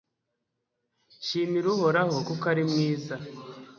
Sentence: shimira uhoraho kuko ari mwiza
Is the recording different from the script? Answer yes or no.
no